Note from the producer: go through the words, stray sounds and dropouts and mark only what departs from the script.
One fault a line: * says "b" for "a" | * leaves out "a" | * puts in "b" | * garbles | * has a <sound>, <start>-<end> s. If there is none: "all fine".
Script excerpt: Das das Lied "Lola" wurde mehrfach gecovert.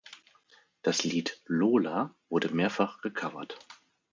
* leaves out "das"